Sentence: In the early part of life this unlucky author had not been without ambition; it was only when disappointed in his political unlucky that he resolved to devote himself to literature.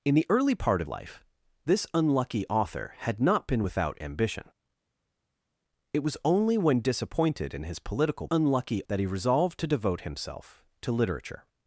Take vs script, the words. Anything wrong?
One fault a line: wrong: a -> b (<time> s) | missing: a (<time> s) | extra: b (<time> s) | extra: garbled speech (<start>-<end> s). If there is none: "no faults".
no faults